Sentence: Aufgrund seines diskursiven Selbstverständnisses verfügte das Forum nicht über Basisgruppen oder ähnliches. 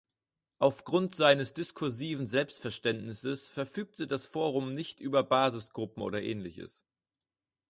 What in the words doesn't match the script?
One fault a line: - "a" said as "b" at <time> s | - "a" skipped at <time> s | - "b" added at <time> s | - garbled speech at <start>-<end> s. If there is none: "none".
none